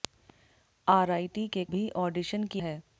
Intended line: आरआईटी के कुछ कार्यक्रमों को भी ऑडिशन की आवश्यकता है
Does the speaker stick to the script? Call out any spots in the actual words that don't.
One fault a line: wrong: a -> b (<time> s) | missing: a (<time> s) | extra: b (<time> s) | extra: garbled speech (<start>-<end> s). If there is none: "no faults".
missing: कुछ कार्यक्रमों को (1.6 s)
missing: आवश्यकता (2.6 s)